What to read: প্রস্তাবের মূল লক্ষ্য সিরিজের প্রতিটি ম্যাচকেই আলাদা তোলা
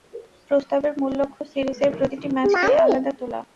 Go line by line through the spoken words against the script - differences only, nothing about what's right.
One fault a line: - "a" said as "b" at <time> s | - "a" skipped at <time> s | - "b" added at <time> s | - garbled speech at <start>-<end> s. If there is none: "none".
none